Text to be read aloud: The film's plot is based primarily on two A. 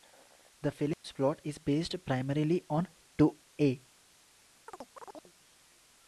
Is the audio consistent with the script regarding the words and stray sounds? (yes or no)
no